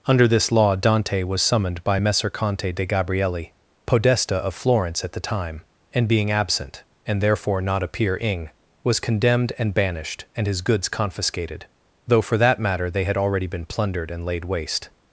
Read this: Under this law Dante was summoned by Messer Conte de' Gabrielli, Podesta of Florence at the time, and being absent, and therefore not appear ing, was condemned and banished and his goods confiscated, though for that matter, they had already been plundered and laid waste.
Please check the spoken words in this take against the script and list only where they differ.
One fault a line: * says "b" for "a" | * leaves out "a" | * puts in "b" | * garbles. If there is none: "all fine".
all fine